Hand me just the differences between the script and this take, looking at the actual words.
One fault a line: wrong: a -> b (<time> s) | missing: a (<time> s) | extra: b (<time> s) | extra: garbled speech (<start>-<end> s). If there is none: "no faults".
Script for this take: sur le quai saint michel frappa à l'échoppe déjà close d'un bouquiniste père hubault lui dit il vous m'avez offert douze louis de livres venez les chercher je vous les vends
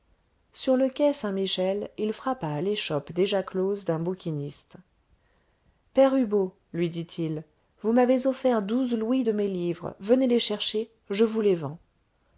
extra: il (2.0 s)
extra: mes (9.3 s)